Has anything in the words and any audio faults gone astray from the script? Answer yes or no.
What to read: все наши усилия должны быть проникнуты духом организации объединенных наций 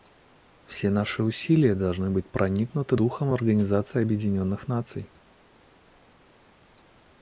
no